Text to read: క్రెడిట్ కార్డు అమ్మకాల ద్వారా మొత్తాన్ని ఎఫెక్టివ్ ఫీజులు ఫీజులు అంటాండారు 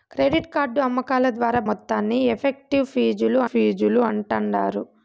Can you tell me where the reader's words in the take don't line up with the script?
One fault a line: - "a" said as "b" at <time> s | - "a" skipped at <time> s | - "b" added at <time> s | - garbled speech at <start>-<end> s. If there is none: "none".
none